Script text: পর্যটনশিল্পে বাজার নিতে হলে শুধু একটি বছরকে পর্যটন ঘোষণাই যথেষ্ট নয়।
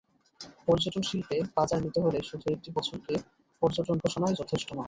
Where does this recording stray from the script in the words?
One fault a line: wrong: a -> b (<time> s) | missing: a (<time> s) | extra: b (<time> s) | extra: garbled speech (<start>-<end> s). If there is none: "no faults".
no faults